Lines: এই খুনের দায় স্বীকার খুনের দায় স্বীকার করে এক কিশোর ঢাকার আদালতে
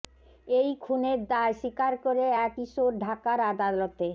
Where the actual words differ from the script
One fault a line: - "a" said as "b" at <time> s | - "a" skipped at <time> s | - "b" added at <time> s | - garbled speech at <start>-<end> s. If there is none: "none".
- "খুনের দায় স্বীকার" skipped at 1.9 s